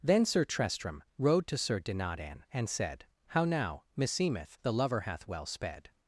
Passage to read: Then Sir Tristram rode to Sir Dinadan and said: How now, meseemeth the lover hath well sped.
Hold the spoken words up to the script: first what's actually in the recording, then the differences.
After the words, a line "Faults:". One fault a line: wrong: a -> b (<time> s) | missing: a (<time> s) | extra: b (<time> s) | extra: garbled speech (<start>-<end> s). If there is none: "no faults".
Then Sir Tristram rode to Sir Dinadan and said: How now, meseemeth the lover hath well sped.
Faults:
no faults